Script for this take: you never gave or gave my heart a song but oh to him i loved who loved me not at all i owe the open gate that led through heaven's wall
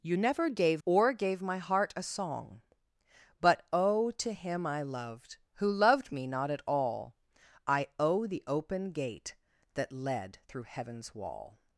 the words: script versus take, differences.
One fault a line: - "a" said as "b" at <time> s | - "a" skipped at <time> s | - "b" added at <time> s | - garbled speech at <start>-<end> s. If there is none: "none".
none